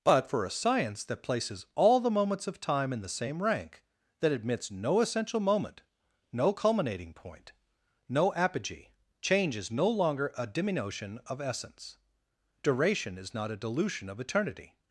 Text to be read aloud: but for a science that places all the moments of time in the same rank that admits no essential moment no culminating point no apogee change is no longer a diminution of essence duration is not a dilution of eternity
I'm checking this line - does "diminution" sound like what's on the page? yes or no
yes